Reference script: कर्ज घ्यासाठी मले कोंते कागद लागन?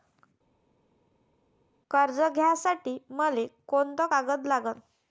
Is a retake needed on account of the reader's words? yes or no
no